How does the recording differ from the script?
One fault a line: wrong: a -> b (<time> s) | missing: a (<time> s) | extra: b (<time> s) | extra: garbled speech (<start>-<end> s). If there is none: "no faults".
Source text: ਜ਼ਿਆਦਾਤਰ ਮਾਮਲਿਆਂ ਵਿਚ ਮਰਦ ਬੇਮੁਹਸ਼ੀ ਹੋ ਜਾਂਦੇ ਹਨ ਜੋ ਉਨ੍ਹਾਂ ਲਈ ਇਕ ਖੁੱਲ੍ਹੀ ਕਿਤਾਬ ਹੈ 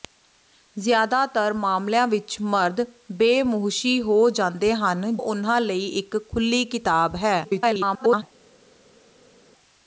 missing: ਜੋ (5.2 s)
extra: garbled speech (7.4-8.2 s)